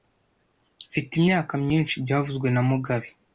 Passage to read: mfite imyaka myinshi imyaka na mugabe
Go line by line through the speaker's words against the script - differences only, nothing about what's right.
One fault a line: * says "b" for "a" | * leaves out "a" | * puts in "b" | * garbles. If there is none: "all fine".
* says "byavuzwe" for "imyaka"